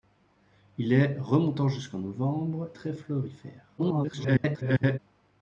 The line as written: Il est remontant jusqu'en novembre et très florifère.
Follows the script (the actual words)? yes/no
no